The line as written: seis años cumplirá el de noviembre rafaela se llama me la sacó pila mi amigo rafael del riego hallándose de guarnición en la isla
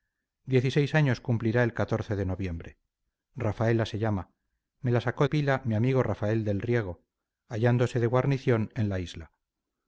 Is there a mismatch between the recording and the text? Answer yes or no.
no